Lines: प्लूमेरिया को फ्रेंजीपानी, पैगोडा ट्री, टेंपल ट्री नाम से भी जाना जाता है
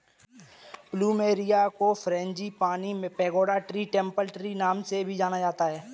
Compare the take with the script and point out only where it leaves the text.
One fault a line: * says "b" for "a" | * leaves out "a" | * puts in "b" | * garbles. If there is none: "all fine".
all fine